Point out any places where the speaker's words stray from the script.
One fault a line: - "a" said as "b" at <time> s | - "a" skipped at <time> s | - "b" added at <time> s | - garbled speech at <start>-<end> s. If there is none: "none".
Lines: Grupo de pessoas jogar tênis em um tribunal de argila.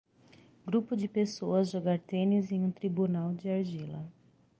none